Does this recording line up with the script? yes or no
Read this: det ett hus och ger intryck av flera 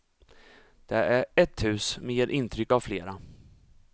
no